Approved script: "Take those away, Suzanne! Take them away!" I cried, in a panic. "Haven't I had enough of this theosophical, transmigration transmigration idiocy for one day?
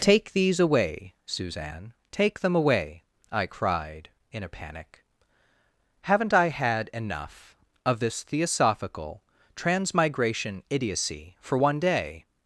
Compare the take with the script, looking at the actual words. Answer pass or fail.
fail